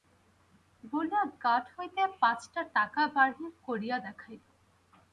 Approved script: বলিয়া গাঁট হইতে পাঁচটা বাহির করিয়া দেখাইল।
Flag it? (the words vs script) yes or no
yes